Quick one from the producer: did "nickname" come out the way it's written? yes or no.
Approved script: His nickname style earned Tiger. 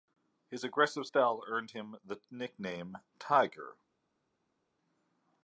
no